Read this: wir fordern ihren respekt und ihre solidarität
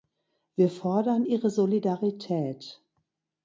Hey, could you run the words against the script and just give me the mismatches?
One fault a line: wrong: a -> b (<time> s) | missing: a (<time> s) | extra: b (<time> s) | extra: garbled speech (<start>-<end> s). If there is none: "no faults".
missing: ihren respekt und (1.3 s)